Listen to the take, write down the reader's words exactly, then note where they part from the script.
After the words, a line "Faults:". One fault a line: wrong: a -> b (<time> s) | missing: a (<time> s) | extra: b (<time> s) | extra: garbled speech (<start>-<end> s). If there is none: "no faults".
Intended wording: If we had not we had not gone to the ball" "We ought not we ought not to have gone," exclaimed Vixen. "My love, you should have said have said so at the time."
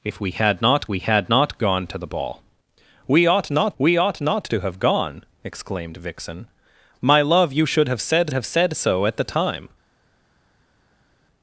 If we had not we had not gone to the ball" "We ought not we ought not to have gone," exclaimed Vixen. "My love, you should have said have said so at the time."
Faults:
no faults